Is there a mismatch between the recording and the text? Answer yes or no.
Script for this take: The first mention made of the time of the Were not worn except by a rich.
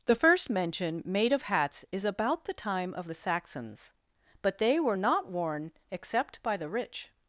yes